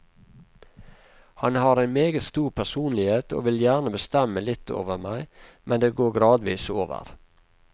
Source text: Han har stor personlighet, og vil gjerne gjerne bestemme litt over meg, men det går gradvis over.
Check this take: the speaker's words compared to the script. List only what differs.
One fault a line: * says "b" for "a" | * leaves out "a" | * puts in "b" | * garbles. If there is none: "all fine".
* puts in "en meget"
* leaves out "gjerne"